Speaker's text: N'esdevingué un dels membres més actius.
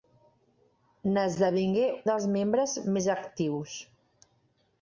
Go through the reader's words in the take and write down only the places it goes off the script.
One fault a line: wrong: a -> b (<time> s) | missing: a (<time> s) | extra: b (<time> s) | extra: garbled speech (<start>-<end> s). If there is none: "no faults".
missing: un (1.9 s)